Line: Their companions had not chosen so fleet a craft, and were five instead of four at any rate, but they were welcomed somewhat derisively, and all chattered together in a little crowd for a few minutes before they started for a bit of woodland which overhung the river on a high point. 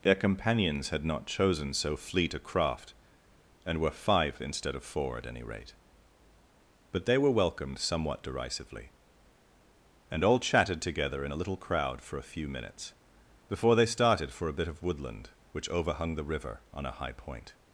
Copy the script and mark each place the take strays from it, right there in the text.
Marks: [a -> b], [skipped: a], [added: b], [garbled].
Their companions had not chosen so fleet a craft, and were five instead of four at any rate, but they were welcomed somewhat derisively, and all [chattered -> chatted] together in a little crowd for a few minutes before they started for a bit of woodland which overhung the river on a high point.